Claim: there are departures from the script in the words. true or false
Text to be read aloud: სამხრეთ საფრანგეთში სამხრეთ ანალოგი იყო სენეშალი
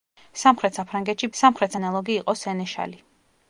false